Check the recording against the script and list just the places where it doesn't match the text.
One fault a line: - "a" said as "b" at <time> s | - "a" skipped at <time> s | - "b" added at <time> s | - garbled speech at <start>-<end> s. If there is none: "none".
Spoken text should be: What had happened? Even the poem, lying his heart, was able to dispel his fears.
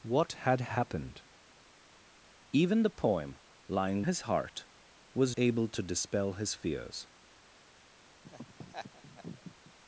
none